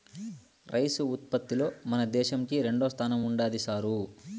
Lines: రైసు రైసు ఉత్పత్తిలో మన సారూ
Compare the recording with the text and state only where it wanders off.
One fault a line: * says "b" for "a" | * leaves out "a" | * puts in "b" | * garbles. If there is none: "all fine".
* leaves out "రైసు"
* puts in "దేశంకి రెండోస్థానం ఉండాది"